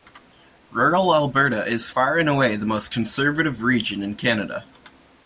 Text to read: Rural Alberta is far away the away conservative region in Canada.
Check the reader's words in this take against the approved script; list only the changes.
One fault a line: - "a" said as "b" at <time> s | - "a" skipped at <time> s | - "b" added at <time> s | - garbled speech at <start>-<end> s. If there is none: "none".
- "and" added at 2.2 s
- "away" said as "most" at 2.7 s